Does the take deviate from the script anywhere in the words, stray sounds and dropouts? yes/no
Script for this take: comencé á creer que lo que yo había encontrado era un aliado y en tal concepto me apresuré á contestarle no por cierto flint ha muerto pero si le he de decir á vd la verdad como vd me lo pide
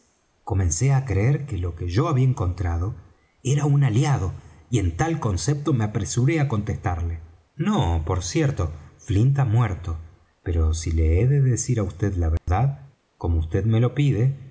yes